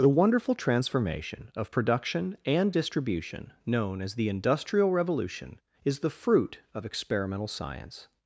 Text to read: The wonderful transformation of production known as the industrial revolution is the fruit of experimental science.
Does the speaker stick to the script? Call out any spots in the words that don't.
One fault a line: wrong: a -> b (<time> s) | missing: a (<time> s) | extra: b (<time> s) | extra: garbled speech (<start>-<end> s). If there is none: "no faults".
extra: and distribution (2.4 s)